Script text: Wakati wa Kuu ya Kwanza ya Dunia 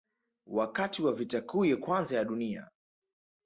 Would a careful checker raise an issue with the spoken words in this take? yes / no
yes